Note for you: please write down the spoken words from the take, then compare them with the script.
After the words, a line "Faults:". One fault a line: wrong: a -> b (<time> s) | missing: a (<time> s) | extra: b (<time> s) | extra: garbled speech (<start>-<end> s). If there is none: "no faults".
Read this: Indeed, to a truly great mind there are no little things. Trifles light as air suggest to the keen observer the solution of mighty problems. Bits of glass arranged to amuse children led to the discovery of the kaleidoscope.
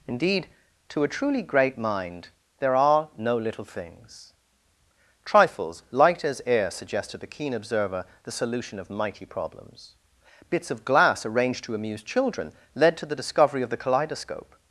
Indeed, to a truly great mind there are no little things. Trifles light as air suggest to the keen observer the solution of mighty problems. Bits of glass arranged to amuse children led to the discovery of the kaleidoscope.
Faults:
no faults